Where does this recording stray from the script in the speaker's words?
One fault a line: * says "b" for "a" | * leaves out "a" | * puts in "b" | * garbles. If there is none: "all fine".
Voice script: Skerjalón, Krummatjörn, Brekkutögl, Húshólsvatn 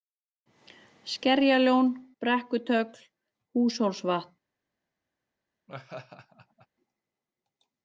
* leaves out "Krummatjörn"